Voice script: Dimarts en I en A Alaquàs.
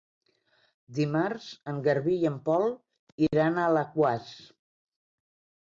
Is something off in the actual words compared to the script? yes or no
yes